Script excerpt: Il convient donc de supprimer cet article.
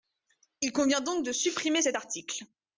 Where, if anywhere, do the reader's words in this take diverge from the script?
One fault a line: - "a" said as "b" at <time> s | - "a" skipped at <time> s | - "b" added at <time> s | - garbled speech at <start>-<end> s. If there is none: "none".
none